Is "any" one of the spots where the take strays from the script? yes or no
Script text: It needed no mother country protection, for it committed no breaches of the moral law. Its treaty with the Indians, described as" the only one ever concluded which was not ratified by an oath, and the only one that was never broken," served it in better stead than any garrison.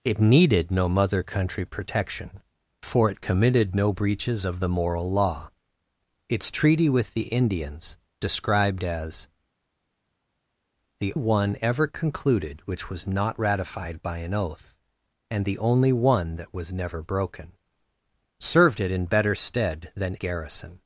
yes